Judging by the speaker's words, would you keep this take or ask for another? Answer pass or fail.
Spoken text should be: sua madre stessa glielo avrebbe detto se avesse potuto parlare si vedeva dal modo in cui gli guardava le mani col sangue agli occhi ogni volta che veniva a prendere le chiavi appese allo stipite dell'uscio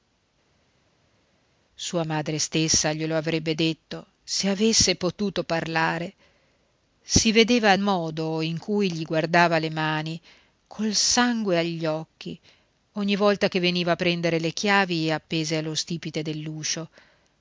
fail